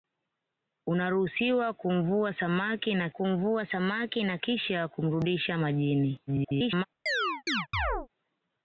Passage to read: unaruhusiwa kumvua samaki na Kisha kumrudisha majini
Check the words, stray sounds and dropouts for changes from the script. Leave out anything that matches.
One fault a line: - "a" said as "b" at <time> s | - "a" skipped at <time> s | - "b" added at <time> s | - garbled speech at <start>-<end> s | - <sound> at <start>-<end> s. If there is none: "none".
- "kumvua samaki na" added at 3.1 s
- garbled speech at 6.3-6.9 s
- chirp at 7.1-8.1 s